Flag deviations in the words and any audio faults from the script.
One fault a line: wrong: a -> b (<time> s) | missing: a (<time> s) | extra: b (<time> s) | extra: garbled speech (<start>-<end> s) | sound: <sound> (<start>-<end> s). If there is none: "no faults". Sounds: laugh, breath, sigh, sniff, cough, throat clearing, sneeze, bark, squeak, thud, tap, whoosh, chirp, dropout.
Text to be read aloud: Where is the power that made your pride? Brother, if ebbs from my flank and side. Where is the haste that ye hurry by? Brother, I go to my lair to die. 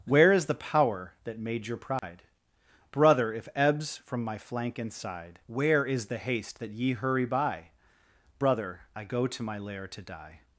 sound: dropout (2.0-2.0 s)